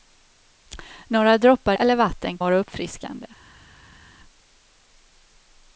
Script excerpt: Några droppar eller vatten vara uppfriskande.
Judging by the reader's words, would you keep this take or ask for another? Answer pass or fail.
pass